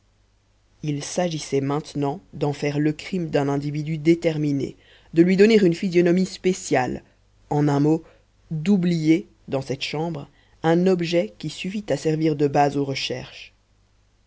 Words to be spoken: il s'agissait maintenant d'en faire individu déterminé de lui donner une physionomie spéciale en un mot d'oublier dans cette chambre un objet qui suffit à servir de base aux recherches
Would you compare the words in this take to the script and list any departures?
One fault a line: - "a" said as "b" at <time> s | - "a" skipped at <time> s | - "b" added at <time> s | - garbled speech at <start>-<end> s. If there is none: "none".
- "le crime d'un" added at 2.8 s